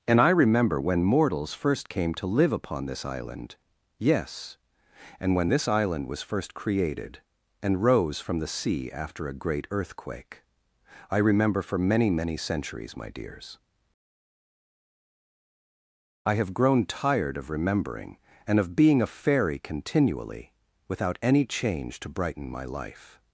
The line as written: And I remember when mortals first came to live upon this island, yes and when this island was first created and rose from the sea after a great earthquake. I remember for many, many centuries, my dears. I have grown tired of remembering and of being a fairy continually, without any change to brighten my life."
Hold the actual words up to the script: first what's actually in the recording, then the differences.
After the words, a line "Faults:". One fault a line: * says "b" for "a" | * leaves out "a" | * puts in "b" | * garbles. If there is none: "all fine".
And I remember when mortals first came to live upon this island, yes and when this island was first created and rose from the sea after a great earthquake. I remember for many, many centuries, my dears. I have grown tired of remembering and of being a fairy continually, without any change to brighten my life."
Faults:
all fine